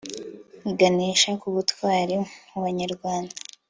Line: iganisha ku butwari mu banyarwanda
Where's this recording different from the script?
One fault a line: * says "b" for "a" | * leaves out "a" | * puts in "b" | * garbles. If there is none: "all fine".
all fine